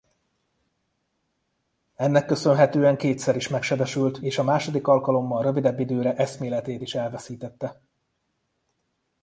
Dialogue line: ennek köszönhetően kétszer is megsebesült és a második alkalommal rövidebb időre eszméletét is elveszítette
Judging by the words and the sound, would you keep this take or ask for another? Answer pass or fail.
pass